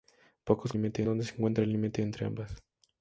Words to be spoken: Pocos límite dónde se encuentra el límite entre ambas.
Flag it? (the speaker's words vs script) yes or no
no